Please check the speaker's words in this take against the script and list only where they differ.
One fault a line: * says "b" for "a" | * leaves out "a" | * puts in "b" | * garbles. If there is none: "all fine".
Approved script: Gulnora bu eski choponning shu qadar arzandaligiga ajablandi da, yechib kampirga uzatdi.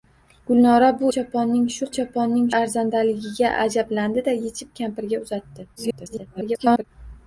* leaves out "eski"
* says "choponning" for "qadar"
* garbles